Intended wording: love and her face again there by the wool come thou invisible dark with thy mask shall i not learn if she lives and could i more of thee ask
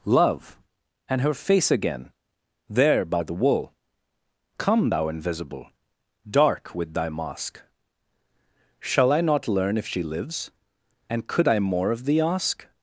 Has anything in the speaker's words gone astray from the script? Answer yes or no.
no